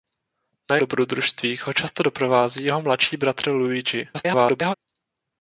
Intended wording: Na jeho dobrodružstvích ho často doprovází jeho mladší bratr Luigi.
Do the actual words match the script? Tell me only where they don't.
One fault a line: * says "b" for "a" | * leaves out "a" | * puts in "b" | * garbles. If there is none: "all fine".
* leaves out "jeho"
* garbles